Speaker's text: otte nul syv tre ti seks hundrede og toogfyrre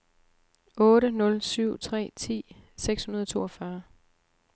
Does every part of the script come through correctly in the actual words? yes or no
yes